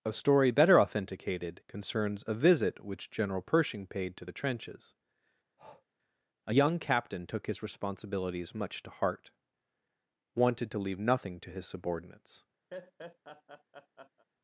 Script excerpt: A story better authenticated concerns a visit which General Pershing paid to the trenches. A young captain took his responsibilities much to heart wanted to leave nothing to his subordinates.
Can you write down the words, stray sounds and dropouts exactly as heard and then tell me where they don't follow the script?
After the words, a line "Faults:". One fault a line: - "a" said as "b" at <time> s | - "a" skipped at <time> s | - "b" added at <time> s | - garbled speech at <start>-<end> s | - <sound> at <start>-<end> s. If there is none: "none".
A story better authenticated concerns a visit which General Pershing paid to the trenches. A young captain took his responsibilities much to heart wanted to leave nothing to his subordinates.
Faults:
- breath at 5.6-5.9 s
- laugh at 12.7-14.3 s